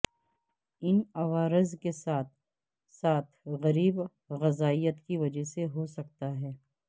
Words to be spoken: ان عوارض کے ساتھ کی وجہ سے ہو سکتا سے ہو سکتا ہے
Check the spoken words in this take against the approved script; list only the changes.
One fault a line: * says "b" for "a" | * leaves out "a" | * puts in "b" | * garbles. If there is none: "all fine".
* says "ساتھ غریب غذائیت کی وجہ" for "کی وجہ سے ہو سکتا"